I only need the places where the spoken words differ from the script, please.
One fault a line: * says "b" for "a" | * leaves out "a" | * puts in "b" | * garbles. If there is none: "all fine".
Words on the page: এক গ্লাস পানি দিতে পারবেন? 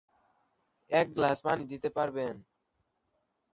all fine